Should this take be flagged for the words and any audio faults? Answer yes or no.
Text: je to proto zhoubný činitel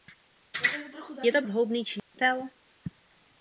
yes